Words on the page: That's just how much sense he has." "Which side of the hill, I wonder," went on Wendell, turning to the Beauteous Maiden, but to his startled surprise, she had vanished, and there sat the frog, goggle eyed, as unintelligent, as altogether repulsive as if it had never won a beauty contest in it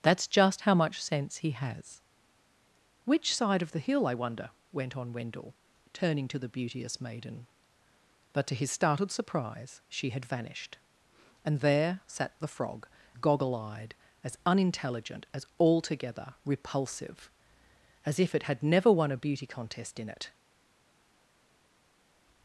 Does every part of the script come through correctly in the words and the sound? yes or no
yes